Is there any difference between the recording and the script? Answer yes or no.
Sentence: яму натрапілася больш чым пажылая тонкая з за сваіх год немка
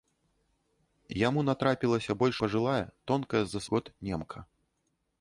yes